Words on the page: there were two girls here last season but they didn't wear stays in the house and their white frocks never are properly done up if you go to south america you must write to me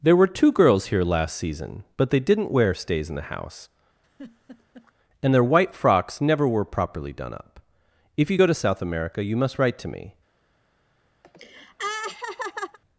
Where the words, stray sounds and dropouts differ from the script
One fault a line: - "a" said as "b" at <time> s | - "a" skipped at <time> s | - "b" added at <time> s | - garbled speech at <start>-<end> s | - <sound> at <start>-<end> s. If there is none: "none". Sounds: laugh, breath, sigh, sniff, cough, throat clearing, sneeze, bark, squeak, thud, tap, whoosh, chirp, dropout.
- laugh at 4.0-4.9 s
- "are" said as "were" at 6.5 s
- laugh at 11.2-12.8 s